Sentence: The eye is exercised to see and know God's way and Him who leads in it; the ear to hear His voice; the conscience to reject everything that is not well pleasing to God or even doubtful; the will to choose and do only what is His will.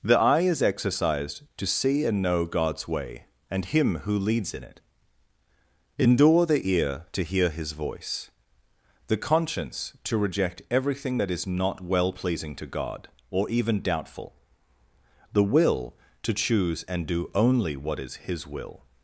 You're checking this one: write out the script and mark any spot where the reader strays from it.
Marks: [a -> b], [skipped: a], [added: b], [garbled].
The eye is exercised to see and know God's way and Him who leads in it; [added: endure] the ear to hear His voice; the conscience to reject everything that is not well pleasing to God or even doubtful; the will to choose and do only what is His will.